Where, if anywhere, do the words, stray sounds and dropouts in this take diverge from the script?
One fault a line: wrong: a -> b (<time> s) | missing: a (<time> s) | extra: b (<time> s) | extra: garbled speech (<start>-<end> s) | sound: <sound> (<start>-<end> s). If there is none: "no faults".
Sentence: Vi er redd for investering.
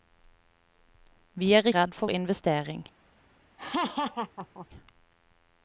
sound: laugh (3.6-4.7 s)